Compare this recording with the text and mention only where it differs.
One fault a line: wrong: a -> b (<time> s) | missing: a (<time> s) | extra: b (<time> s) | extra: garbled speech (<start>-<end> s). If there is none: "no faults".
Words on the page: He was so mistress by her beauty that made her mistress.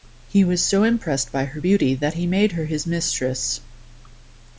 wrong: mistress -> impressed (0.8 s)
extra: he (2.1 s)
extra: his (2.7 s)